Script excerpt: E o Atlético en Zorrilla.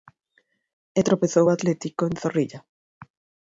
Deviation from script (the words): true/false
true